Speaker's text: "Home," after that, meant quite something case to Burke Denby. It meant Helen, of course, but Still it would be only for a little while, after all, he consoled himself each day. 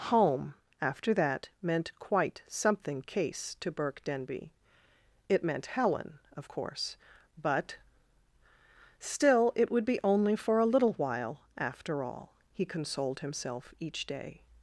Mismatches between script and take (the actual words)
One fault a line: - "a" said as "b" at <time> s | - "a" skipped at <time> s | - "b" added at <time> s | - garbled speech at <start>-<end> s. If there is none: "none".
none